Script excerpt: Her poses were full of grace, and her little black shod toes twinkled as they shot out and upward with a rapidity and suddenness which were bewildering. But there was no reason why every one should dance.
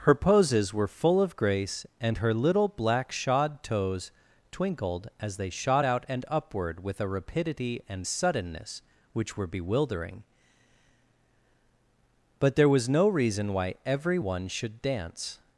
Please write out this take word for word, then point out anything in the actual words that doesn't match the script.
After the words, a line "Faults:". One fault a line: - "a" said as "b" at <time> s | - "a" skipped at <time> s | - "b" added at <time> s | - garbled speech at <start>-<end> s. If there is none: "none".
Her poses were full of grace, and her little black shod toes twinkled as they shot out and upward with a rapidity and suddenness which were bewildering. But there was no reason why every one should dance.
Faults:
none